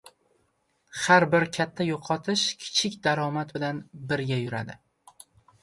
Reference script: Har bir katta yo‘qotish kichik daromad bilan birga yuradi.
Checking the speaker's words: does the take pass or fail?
pass